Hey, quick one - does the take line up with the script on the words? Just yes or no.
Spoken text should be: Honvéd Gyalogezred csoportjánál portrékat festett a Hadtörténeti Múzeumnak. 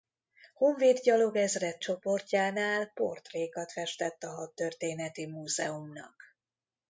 yes